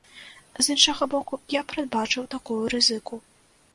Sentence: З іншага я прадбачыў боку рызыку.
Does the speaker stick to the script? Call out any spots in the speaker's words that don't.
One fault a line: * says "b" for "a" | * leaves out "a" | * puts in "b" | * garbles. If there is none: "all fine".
* puts in "боку"
* says "такую" for "боку"